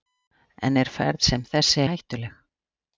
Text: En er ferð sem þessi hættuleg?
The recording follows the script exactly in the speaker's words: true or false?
true